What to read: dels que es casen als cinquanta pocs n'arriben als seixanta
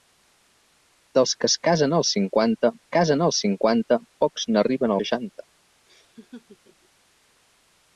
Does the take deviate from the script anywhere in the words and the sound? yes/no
yes